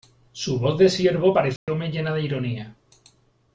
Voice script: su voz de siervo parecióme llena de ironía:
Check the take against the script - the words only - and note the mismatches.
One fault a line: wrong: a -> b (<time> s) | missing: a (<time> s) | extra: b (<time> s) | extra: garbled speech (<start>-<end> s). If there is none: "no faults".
no faults